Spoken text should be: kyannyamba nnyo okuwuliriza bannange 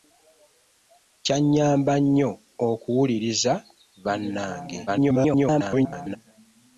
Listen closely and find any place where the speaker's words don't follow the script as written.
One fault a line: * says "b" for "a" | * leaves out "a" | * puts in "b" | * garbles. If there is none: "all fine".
* garbles